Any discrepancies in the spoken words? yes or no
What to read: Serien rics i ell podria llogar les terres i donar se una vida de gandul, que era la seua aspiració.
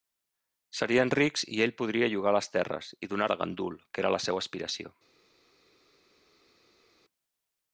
yes